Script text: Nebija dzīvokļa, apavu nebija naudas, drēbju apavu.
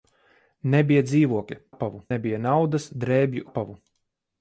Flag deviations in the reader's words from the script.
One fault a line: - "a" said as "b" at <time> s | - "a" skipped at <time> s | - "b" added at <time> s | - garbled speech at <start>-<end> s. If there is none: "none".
none